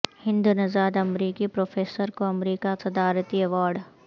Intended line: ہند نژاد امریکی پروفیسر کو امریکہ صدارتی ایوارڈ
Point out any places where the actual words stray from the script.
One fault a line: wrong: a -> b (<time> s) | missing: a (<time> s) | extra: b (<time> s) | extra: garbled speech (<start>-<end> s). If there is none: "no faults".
no faults